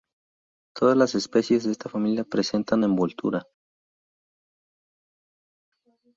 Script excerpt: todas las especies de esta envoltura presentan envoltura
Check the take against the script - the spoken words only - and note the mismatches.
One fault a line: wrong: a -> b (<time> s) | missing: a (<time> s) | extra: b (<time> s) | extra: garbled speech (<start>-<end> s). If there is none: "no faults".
wrong: envoltura -> familia (1.9 s)